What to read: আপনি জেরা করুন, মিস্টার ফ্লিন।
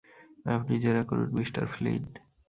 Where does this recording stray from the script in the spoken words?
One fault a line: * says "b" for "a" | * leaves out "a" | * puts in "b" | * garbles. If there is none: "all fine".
all fine